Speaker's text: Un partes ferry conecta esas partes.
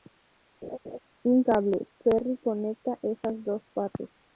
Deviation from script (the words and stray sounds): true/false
true